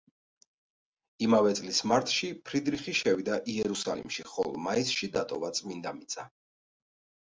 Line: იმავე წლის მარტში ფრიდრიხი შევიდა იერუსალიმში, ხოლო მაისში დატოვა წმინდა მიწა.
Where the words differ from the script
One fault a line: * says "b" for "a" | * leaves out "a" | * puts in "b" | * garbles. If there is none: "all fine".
all fine